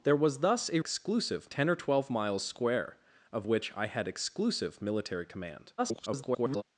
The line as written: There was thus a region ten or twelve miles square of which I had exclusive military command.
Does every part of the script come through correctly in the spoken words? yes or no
no